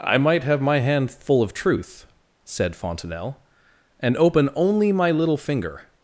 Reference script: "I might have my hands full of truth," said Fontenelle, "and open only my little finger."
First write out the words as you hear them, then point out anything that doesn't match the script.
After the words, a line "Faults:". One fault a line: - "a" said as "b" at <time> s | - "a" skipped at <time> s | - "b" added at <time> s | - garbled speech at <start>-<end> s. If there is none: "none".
"I might have my hand full of truth," said Fontenelle, "and open only my little finger."
Faults:
- "hands" said as "hand" at 0.8 s